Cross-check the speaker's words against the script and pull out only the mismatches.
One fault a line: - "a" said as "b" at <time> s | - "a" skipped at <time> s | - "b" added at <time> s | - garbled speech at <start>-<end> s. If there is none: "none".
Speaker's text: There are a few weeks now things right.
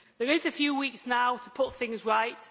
- "to put" added at 1.4 s